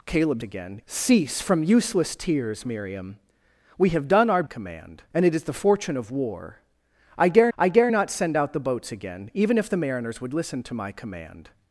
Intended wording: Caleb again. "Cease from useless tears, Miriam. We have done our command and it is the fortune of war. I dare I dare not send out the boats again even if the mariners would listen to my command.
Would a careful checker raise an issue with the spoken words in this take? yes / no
no